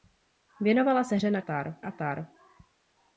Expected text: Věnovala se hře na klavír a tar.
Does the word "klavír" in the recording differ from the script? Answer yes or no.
yes